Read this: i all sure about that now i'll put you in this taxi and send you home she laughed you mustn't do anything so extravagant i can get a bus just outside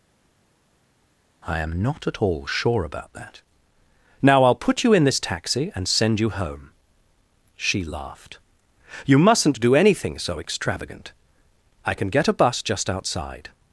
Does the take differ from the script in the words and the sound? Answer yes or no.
yes